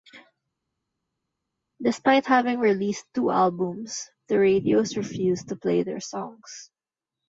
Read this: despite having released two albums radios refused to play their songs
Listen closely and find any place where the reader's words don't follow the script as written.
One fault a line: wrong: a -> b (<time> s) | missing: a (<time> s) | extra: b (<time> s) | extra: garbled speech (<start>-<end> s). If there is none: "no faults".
extra: the (4.3 s)